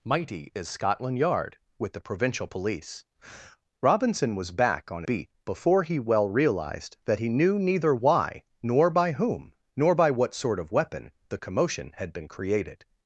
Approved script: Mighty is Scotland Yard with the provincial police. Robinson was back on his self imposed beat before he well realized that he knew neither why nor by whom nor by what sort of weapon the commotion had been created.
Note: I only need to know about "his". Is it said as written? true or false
false